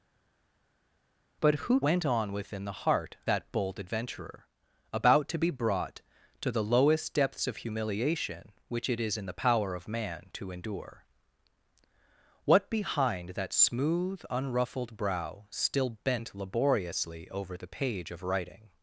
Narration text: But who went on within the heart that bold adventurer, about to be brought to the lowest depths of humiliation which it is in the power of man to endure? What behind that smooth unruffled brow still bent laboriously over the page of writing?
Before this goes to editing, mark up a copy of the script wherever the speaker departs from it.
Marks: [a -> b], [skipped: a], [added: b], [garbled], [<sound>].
But who went on within the heart that bold adventurer, about to be brought to the lowest depths of humiliation which it is in the power of man to endure? What behind that smooth unruffled brow still bent laboriously over the page of writing?